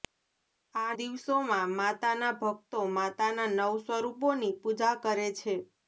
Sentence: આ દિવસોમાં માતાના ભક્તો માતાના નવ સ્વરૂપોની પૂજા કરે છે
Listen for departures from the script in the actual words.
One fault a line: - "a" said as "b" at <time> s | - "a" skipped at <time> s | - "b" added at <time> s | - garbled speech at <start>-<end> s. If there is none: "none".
none